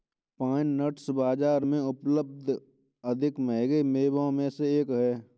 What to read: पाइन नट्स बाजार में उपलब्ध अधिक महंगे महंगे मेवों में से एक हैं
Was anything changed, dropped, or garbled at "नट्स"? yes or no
no